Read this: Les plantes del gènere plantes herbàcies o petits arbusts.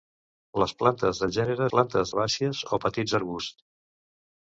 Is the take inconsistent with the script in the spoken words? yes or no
no